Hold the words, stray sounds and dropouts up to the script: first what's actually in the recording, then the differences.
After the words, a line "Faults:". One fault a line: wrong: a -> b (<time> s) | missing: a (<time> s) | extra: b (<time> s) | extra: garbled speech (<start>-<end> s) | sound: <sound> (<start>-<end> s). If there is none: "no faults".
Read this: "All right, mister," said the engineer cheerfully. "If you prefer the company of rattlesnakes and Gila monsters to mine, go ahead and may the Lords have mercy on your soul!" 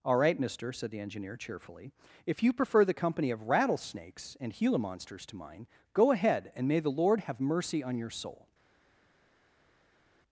"All right, mister," said the engineer cheerfully. "If you prefer the company of rattlesnakes and Gila monsters to mine, go ahead and may the Lord have mercy on your soul!"
Faults:
wrong: Lords -> Lord (6.9 s)